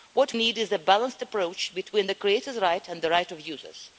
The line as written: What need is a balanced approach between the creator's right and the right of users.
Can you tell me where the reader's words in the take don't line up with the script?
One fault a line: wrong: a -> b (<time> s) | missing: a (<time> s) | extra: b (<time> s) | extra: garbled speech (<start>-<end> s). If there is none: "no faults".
no faults